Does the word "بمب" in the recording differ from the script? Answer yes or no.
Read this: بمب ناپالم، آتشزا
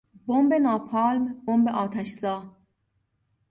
no